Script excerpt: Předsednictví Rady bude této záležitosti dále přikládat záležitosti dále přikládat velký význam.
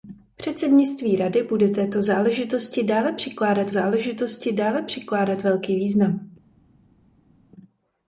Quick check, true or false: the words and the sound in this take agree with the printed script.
true